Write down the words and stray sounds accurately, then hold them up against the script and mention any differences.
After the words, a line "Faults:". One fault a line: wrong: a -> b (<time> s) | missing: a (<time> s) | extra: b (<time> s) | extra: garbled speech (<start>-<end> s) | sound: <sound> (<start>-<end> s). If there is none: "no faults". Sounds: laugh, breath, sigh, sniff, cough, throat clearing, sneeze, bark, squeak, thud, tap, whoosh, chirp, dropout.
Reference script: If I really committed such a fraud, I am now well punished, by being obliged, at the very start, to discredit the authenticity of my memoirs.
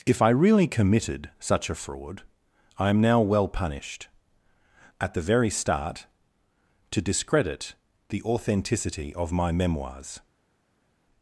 If I really committed such a fraud, I am now well punished, at the very start, to discredit the authenticity of my memoirs.
Faults:
missing: by being obliged (4.1 s)